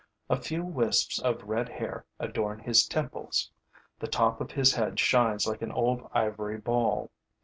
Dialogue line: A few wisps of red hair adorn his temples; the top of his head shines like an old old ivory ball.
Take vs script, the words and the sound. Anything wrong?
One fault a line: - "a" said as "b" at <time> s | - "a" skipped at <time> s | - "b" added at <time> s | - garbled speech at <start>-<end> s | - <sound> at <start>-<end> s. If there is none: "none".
- "old" skipped at 6.1 s